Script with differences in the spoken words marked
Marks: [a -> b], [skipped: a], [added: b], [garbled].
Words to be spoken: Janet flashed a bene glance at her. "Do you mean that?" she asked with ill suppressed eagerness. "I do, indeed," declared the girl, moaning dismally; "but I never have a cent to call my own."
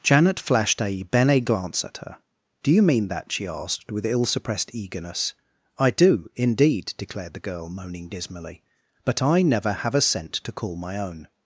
Janet flashed a bene glance at her. "Do you mean that?" she asked with ill suppressed eagerness. "I do, indeed," declared the girl, moaning dismally; "but I never have a cent to call my own."